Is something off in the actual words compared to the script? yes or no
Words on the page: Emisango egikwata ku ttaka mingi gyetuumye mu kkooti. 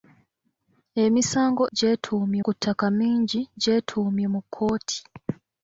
yes